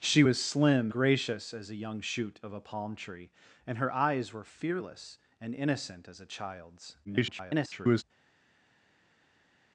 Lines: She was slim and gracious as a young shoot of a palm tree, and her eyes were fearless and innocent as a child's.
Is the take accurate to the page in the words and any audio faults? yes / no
no